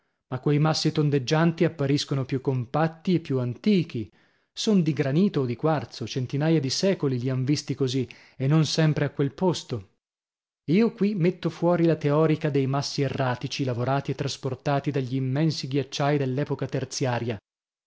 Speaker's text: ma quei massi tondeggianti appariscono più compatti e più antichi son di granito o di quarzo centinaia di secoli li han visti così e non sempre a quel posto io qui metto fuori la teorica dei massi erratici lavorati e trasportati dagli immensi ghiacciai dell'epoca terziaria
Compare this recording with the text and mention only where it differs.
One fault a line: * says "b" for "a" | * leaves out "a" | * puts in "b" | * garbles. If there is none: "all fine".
all fine